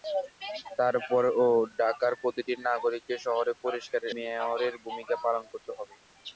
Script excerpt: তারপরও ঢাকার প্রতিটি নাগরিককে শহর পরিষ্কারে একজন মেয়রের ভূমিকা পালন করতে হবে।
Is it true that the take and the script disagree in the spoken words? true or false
true